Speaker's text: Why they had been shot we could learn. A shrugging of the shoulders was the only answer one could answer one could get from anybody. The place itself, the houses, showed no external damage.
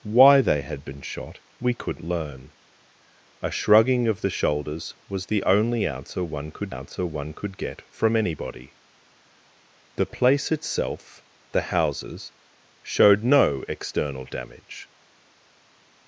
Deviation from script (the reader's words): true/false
false